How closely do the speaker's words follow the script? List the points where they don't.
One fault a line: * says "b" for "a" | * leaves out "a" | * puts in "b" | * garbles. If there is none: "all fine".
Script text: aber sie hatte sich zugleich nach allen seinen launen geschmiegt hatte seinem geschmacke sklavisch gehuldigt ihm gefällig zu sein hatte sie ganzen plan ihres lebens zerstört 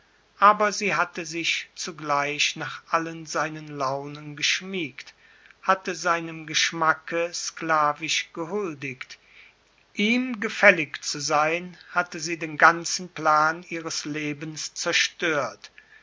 * puts in "den"